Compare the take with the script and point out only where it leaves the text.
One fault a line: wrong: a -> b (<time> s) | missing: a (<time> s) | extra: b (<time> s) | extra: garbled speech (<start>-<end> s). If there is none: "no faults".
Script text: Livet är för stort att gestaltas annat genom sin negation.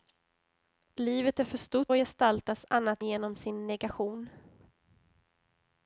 no faults